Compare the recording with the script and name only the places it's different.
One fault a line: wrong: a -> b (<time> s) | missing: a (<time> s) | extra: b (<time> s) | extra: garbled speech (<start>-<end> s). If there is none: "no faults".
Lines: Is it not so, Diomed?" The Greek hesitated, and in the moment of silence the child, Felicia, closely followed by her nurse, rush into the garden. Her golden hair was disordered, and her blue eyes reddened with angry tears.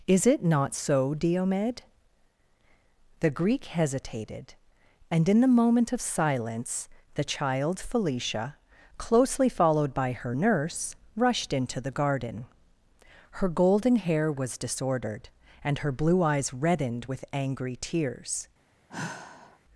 wrong: rush -> rushed (11.2 s)